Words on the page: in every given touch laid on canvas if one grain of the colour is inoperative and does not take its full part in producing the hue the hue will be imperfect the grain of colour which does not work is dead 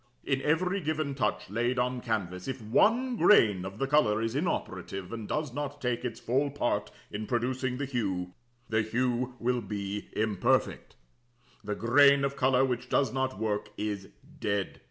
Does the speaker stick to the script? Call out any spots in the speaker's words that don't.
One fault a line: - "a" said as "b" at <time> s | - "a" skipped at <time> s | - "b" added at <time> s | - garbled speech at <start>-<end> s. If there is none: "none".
none